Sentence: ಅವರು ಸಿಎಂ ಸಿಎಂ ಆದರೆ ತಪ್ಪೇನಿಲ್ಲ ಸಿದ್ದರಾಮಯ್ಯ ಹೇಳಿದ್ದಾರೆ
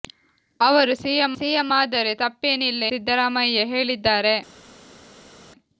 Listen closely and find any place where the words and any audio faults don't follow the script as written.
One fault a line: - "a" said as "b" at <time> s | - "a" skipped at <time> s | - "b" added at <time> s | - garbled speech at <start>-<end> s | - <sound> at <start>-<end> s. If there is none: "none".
none